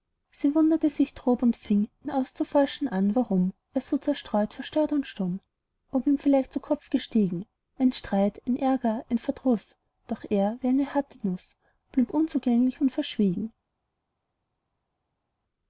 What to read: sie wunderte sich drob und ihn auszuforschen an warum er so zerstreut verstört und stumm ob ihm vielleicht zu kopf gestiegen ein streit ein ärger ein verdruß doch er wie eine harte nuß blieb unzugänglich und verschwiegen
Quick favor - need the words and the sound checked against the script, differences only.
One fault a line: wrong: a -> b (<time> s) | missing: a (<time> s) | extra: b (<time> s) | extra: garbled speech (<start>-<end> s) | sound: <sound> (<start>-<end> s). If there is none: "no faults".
extra: fing (1.6 s)